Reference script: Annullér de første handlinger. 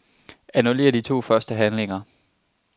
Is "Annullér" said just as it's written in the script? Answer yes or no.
yes